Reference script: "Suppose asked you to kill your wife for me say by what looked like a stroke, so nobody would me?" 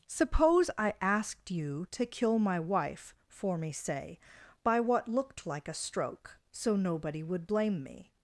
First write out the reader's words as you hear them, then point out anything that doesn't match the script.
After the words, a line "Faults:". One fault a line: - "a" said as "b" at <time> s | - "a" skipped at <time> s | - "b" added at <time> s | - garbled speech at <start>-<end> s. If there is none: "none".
"Suppose I asked you to kill my wife for me say by what looked like a stroke, so nobody would blame me?"
Faults:
- "I" added at 0.8 s
- "your" said as "my" at 2.4 s
- "blame" added at 7.5 s